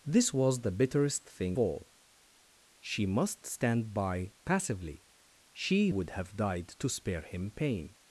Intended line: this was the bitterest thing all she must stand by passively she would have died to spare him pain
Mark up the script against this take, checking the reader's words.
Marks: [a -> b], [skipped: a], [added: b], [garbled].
this was the bitterest thing all she must stand by passively she would have died to spare him pain